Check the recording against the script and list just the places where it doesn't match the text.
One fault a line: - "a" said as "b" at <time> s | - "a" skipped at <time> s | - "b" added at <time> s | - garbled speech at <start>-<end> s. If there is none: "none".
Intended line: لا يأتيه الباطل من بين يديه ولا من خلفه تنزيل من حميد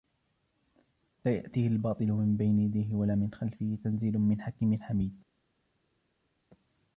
- "حكيم" added at 4.4 s